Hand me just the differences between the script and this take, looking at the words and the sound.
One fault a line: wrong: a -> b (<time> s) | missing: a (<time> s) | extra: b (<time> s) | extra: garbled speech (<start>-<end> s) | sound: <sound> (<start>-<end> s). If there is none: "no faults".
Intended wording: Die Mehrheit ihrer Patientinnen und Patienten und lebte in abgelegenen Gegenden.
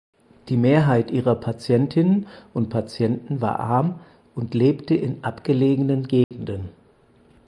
extra: war arm (3.4 s)
sound: dropout (6.2-6.3 s)